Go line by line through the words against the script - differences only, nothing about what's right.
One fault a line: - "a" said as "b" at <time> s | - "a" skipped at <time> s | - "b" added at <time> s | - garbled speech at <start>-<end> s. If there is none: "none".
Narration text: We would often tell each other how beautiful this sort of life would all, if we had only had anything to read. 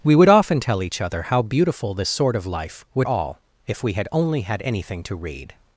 none